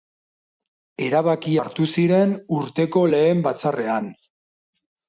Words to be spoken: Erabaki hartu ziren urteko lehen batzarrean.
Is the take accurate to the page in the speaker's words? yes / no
yes